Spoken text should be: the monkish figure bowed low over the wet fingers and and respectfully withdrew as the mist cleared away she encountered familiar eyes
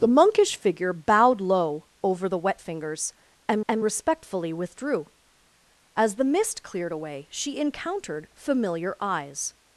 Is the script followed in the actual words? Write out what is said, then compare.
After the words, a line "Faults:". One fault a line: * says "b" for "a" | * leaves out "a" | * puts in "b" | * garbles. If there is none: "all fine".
the monkish figure bowed low over the wet fingers and and respectfully withdrew as the mist cleared away she encountered familiar eyes
Faults:
all fine